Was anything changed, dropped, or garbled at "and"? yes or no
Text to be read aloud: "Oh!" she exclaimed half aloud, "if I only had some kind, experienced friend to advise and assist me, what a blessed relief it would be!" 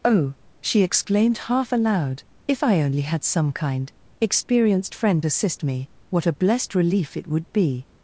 yes